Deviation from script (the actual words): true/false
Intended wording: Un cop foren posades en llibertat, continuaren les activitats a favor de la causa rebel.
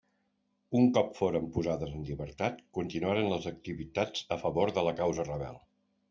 false